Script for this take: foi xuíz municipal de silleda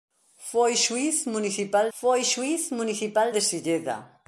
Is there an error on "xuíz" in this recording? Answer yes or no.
no